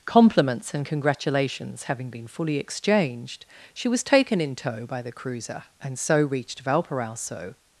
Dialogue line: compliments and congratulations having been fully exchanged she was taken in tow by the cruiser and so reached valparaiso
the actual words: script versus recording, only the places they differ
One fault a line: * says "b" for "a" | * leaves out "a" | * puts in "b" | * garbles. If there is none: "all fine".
all fine